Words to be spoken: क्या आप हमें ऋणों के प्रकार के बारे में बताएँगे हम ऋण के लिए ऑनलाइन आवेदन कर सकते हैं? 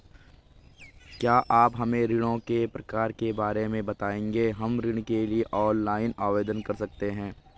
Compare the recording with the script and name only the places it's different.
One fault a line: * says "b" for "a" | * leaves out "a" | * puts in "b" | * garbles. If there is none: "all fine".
all fine